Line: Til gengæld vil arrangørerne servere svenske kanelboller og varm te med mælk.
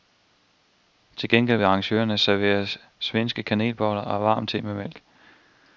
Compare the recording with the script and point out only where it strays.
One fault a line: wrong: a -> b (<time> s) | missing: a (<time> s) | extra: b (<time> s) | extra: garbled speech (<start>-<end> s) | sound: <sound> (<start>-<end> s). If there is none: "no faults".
no faults